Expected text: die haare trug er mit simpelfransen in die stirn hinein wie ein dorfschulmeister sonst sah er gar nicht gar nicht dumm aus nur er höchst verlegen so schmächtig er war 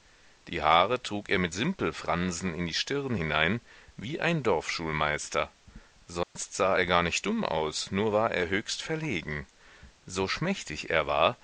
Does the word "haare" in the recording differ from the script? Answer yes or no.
no